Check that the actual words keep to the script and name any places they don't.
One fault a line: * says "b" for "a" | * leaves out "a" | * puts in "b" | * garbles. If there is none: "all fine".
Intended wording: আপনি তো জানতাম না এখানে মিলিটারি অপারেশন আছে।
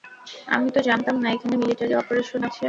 * says "আমি" for "আপনি"